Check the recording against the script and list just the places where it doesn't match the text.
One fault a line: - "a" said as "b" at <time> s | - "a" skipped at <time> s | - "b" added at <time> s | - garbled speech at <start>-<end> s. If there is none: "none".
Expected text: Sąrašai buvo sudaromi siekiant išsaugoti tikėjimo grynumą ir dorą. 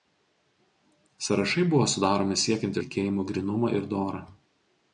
- "išsaugoti" skipped at 2.8 s